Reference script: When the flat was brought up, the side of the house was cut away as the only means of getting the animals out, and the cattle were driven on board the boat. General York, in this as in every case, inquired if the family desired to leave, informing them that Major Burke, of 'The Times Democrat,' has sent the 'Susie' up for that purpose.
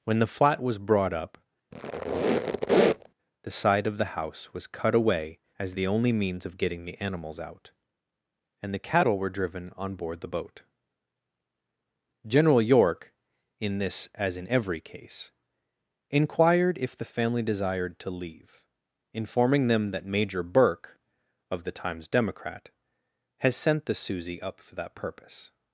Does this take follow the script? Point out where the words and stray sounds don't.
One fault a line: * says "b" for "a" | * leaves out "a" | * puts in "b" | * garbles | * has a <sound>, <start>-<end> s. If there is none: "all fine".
* has a squeak, 1.7-3.1 s